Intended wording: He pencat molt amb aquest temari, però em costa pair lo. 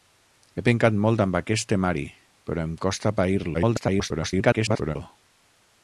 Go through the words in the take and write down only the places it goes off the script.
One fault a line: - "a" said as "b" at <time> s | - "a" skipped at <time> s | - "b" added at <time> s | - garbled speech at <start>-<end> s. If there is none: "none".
- garbled speech at 3.5-5.0 s